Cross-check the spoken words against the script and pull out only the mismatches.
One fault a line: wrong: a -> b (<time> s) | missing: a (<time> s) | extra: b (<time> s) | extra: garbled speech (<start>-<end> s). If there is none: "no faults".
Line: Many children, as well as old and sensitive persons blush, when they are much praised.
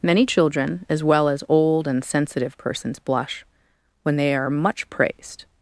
no faults